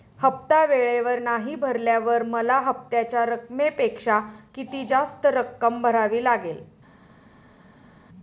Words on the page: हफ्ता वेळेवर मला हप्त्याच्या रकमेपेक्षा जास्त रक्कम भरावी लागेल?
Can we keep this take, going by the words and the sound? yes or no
no